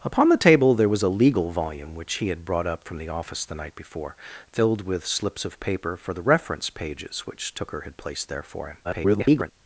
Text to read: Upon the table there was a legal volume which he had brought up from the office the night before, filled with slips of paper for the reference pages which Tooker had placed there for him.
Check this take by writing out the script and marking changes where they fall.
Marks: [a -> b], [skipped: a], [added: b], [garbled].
Upon the table there was a legal volume which he had brought up from the office the night before, filled with slips of paper for the reference pages which Tooker had placed there for him. [garbled]